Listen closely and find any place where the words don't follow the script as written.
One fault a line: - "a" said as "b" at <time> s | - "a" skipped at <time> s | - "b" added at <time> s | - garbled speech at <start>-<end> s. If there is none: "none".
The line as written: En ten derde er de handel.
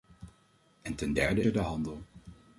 none